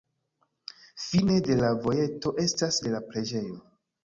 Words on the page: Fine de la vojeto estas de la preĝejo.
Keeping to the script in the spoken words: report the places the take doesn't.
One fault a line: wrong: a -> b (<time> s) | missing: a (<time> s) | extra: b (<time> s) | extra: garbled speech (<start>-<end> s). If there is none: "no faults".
no faults